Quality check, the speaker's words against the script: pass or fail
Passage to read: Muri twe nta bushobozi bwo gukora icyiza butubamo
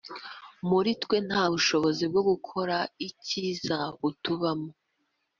pass